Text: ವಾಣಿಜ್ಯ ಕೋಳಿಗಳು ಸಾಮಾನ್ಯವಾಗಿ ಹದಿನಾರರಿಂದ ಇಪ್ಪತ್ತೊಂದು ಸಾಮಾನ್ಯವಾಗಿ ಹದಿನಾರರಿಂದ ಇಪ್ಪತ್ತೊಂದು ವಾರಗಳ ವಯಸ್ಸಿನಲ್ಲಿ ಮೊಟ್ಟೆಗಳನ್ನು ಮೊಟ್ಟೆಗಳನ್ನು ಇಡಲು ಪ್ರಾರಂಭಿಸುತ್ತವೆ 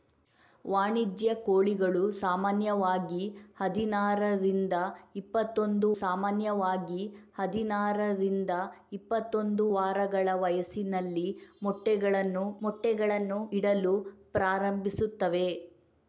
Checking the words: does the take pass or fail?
pass